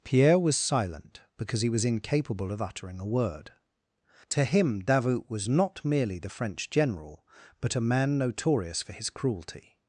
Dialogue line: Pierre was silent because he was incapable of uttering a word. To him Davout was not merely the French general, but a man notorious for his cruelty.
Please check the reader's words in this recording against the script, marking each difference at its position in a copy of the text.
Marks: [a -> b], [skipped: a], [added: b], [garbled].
Pierre was silent because he was incapable of uttering a word. To him Davout was not merely the French general, but a man notorious for his cruelty.